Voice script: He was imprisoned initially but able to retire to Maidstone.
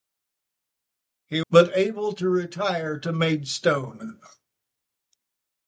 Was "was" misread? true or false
true